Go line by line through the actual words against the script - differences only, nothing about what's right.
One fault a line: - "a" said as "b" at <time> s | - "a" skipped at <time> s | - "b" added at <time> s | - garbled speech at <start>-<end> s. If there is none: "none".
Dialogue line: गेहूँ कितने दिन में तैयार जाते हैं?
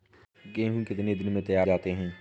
none